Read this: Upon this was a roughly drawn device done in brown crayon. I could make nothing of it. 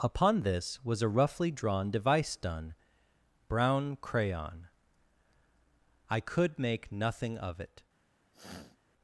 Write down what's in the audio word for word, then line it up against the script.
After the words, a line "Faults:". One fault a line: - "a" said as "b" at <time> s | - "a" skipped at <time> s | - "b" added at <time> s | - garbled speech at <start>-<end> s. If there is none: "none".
Upon this was a roughly drawn device done brown crayon. I could make nothing of it.
Faults:
- "in" skipped at 2.7 s